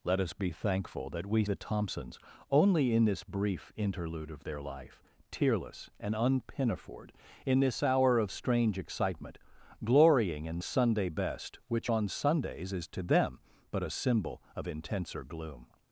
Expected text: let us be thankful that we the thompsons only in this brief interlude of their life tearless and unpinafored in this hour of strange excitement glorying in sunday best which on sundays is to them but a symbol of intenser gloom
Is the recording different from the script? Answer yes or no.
no